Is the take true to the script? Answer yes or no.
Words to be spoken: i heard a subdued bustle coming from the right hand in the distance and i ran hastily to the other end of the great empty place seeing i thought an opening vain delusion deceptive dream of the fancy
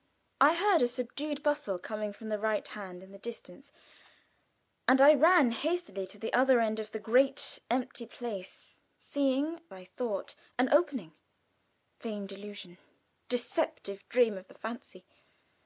yes